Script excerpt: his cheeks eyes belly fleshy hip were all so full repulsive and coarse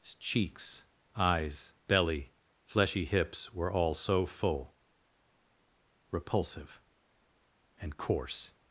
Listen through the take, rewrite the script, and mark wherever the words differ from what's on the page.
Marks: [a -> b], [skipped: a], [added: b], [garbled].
his cheeks eyes belly fleshy [hip -> hips] were all so full repulsive and coarse